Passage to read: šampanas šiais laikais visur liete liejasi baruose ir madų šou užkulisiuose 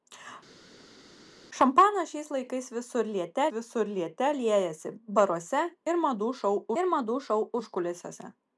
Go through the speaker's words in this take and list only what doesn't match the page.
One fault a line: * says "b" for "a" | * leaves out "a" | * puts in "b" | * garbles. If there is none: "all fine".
* puts in "visur liete"
* puts in "ir madų šou"